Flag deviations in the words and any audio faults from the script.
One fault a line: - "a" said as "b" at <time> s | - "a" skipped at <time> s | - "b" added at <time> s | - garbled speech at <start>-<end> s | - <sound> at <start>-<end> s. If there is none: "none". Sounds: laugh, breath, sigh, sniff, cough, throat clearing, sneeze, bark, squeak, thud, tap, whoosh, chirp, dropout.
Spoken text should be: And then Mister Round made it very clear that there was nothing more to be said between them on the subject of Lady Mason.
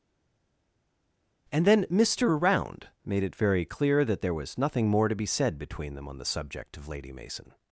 none